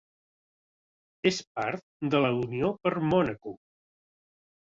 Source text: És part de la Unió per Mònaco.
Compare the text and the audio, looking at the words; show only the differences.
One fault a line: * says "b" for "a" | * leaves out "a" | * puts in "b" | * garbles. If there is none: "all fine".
all fine